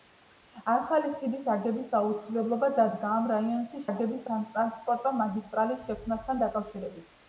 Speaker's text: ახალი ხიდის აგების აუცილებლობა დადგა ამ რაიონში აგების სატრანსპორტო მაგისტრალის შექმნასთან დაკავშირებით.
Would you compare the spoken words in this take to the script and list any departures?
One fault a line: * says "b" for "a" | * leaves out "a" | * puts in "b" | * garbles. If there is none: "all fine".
all fine